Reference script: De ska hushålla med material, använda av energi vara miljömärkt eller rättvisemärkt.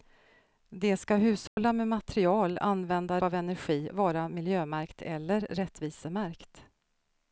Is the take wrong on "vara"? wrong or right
right